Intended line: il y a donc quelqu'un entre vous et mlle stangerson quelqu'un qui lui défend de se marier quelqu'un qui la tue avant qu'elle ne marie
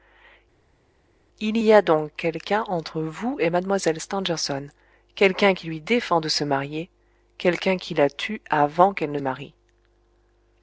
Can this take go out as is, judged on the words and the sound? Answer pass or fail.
pass